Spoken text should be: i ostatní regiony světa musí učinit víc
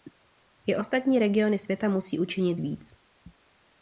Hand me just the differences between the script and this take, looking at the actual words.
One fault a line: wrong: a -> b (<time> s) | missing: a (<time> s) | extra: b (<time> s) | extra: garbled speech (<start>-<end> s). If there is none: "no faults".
no faults